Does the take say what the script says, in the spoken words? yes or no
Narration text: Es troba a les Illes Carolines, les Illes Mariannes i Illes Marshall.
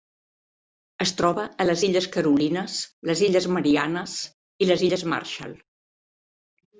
no